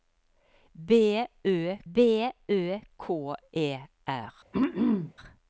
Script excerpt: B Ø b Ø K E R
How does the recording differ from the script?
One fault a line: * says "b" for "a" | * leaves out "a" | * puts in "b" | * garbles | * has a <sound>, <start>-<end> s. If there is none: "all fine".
* has a throat clearing, 4.5-5.1 s